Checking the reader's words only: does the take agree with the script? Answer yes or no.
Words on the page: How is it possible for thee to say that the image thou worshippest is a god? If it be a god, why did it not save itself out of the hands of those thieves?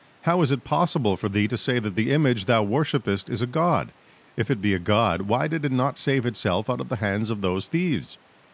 yes